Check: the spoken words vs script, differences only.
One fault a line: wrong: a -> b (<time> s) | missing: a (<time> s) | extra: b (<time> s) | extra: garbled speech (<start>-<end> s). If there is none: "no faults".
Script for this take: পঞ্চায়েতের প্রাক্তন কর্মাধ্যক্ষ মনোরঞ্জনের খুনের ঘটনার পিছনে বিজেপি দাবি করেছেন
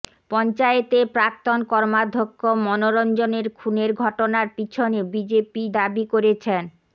no faults